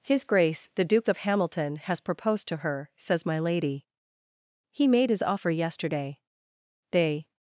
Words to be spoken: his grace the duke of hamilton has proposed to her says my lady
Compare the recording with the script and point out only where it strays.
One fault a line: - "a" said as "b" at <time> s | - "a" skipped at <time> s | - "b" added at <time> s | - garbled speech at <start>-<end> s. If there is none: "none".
- "he made his offer yesterday they" added at 4.7 s